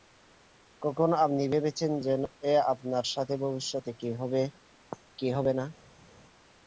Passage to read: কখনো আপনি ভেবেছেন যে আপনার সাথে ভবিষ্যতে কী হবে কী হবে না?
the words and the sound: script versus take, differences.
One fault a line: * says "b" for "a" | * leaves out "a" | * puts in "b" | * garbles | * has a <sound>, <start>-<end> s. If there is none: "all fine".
all fine